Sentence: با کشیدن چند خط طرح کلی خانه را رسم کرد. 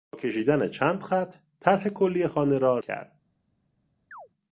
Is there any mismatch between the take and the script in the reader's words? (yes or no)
yes